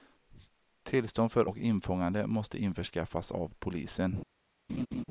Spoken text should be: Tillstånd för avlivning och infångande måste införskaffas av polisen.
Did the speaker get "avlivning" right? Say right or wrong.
wrong